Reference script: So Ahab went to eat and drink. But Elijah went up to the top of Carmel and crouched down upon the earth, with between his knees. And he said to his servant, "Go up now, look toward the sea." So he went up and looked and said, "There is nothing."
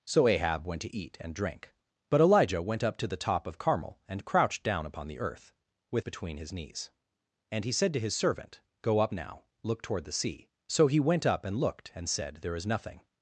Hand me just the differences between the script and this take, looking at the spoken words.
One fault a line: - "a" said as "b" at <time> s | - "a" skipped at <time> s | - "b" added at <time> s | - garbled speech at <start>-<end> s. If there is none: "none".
none